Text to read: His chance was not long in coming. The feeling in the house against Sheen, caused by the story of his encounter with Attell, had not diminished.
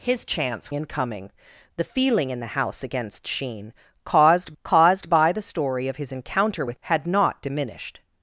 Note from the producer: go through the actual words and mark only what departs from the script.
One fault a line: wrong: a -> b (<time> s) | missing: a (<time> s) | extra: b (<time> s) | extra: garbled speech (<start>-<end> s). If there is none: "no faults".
missing: was not long (0.7 s)
extra: caused (4.6 s)
missing: Attell (6.8 s)